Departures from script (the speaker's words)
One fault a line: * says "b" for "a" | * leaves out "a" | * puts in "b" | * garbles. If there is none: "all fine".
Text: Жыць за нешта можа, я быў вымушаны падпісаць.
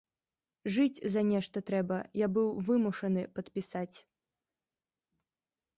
* says "трэба" for "можа"